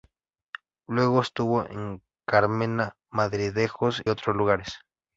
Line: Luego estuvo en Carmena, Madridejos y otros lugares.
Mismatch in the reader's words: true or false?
true